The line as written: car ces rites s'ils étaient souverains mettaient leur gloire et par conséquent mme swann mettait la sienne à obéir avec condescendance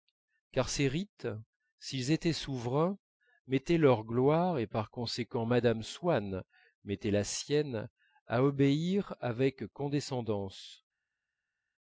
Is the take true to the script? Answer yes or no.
yes